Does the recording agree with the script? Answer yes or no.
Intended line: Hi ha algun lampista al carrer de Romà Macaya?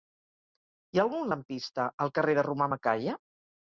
yes